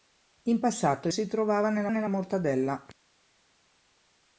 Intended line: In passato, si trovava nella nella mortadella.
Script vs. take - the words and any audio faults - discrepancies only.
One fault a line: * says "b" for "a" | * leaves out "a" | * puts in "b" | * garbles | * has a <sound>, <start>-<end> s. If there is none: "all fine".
all fine